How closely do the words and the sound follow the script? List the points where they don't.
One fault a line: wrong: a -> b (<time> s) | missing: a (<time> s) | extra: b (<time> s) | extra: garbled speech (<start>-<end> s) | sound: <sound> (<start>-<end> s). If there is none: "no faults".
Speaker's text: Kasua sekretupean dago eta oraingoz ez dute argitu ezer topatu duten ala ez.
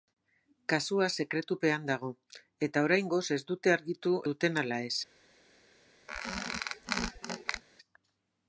missing: ezer topatu (4.2 s)
sound: squeak (6.1-7.6 s)